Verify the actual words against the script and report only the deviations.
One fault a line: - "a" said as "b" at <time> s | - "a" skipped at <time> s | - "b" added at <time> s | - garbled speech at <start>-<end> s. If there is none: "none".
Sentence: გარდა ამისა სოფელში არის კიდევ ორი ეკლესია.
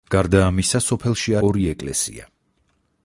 - "არის კიდევ" skipped at 1.4 s